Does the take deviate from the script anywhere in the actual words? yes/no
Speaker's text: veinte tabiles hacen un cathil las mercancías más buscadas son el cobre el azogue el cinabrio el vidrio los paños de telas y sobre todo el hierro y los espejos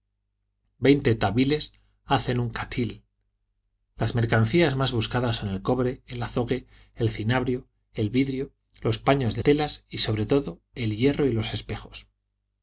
no